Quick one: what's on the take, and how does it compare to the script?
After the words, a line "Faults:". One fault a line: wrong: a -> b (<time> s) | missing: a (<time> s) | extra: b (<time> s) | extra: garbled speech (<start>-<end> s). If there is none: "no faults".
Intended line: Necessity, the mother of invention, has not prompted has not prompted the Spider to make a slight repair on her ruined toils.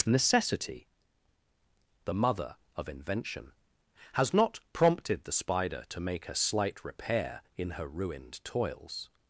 Necessity, the mother of invention, has not prompted the Spider to make a slight repair in her ruined toils.
Faults:
missing: has not prompted (5.2 s)
wrong: on -> in (7.6 s)